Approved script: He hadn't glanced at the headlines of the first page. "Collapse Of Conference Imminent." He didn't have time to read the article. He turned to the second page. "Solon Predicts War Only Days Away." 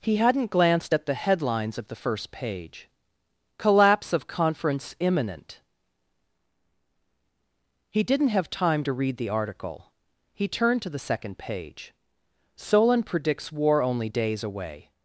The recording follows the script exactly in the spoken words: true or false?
true